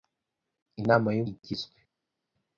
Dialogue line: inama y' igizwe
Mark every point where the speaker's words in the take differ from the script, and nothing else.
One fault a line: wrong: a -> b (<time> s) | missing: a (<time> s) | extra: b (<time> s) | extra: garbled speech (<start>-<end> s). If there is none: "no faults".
no faults